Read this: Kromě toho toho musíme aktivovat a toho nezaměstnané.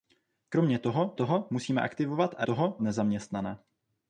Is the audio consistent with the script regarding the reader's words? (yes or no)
yes